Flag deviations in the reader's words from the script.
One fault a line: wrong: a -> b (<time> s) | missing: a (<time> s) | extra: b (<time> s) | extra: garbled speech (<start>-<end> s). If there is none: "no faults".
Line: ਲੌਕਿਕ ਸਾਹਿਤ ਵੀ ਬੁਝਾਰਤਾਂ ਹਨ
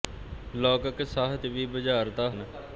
no faults